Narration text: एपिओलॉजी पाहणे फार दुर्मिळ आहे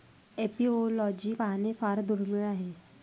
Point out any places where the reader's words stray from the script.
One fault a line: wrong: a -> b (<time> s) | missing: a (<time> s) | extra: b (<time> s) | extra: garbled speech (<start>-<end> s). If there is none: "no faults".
no faults